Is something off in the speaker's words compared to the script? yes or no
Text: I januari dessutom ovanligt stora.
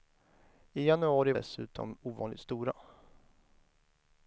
no